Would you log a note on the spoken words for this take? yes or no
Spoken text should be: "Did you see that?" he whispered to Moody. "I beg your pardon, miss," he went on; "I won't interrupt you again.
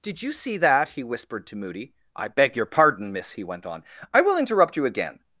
yes